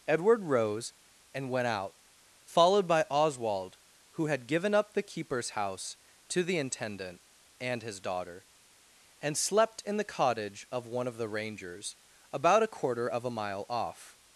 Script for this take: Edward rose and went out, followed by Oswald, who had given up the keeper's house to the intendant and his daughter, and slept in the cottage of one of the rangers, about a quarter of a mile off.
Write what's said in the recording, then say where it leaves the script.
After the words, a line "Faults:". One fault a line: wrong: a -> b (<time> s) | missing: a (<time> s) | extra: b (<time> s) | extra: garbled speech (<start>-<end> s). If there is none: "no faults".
Edward rose and went out, followed by Oswald, who had given up the keeper's house to the intendant and his daughter, and slept in the cottage of one of the rangers, about a quarter of a mile off.
Faults:
no faults